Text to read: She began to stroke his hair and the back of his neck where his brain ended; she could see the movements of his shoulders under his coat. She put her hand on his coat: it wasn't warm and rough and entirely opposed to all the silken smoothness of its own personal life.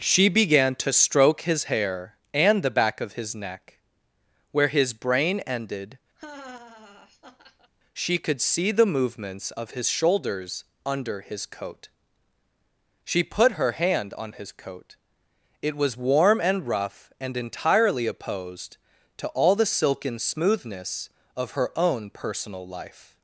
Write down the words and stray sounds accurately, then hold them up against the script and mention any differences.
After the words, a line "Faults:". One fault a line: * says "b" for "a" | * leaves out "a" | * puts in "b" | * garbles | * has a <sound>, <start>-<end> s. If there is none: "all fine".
She began to stroke his hair and the back of his neck where his brain ended; she could see the movements of his shoulders under his coat. She put her hand on his coat: it was warm and rough and entirely opposed to all the silken smoothness of her own personal life.
Faults:
* has a laugh, 6.2-7.7 s
* says "was" for "wasn't"
* says "her" for "its"